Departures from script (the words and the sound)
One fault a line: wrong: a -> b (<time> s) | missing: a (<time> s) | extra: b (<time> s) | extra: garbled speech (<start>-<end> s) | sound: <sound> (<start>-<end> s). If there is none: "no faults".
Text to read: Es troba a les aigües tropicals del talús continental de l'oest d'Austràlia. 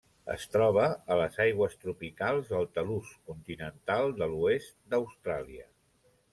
no faults